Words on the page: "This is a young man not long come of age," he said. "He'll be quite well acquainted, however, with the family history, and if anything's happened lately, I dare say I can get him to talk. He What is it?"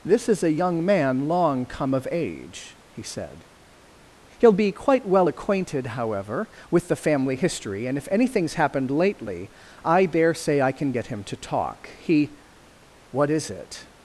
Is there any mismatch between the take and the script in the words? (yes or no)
yes